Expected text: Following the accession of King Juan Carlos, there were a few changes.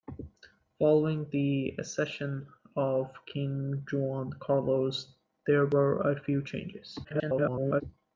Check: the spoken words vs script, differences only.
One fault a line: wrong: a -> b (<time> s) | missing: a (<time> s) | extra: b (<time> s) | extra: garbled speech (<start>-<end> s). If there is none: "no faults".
extra: garbled speech (7.0-7.8 s)